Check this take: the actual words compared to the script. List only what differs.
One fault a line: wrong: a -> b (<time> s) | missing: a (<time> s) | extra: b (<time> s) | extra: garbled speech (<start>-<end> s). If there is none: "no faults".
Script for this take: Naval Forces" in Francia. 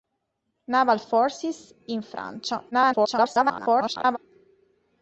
extra: garbled speech (2.7-4.2 s)